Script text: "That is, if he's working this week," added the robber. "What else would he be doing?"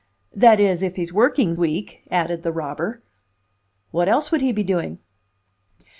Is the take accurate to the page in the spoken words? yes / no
no